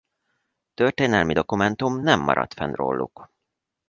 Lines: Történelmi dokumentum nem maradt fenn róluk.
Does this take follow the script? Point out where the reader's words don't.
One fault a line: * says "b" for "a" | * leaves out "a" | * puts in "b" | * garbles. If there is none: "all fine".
all fine